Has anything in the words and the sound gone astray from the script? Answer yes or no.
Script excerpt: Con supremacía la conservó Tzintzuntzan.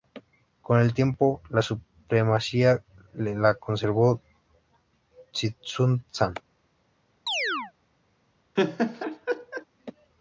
yes